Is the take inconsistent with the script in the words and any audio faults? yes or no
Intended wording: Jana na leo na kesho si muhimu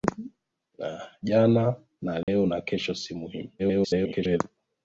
yes